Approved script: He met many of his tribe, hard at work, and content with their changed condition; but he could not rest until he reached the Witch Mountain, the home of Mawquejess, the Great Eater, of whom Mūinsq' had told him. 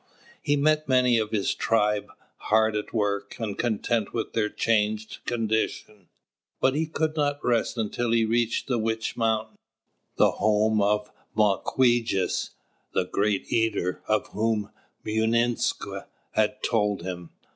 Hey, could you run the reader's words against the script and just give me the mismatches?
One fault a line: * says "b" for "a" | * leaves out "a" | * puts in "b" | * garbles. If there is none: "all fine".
all fine